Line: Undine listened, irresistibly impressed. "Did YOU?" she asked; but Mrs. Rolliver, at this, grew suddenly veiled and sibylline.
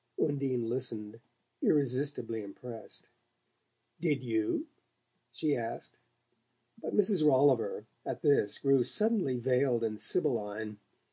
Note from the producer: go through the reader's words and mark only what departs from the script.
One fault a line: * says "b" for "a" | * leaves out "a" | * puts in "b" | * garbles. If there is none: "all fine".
all fine